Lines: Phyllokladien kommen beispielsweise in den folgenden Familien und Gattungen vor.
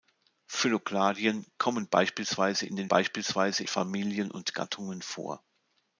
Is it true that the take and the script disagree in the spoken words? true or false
true